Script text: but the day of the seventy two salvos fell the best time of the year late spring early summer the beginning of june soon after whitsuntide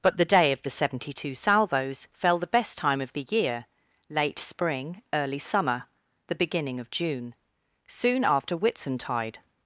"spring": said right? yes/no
yes